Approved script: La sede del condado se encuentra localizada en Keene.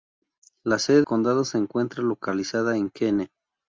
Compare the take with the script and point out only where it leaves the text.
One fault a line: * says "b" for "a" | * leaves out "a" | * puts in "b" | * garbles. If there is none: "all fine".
* leaves out "del"